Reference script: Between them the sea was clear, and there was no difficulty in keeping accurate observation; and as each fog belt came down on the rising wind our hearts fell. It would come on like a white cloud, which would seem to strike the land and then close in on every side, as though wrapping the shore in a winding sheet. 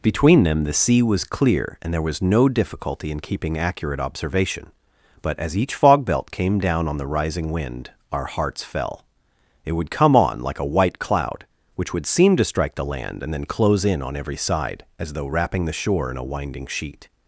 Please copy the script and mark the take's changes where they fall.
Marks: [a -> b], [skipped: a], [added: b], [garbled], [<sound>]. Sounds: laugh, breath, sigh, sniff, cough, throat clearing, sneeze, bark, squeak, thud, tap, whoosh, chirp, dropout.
Between them the sea was clear, and there was no difficulty in keeping accurate observation; [and -> but] as each fog belt came down on the rising wind our hearts fell. It would come on like a white cloud, which would seem to strike the land and then close in on every side, as though wrapping the shore in a winding sheet.